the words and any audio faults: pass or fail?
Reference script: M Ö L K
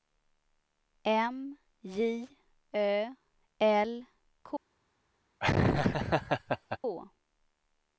fail